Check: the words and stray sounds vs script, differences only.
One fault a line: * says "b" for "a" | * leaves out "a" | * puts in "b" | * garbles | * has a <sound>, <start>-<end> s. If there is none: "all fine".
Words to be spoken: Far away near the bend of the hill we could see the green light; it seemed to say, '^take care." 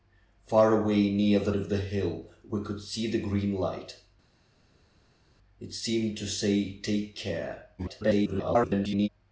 * leaves out "bend"
* garbles